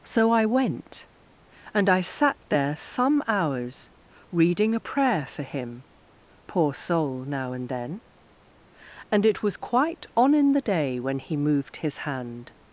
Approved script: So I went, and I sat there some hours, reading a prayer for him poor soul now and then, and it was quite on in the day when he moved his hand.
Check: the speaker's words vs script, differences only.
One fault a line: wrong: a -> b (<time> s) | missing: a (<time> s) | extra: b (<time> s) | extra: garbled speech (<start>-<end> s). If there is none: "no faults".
no faults